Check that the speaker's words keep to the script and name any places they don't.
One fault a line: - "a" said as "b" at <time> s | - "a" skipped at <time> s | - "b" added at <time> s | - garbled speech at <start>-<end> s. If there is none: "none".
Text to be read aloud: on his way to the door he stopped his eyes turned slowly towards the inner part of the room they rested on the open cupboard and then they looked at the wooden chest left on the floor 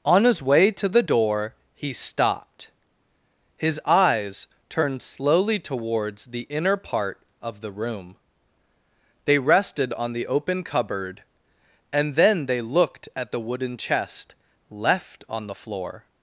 none